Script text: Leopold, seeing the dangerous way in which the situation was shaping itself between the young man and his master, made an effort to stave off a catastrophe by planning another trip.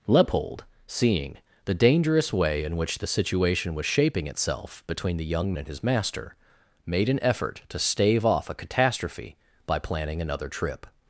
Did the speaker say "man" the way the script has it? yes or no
no